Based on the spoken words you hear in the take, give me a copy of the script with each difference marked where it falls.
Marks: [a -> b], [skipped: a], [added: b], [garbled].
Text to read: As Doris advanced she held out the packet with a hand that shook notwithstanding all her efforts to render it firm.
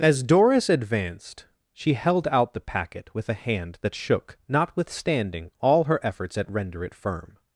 As Doris advanced she held out the packet with a hand that shook notwithstanding all her efforts [to -> at] render it firm.